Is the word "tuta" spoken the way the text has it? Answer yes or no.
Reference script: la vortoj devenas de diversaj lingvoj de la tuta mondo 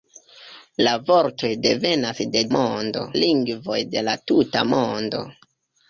yes